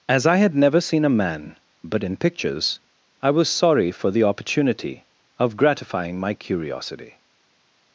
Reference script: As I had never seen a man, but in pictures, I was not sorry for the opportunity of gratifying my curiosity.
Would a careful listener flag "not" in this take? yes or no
yes